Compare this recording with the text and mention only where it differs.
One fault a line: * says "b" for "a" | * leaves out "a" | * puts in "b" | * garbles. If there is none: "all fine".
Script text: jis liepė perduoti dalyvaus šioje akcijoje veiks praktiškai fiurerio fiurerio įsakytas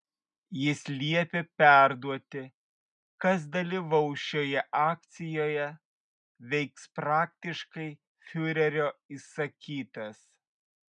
* puts in "kas"
* leaves out "fiurerio"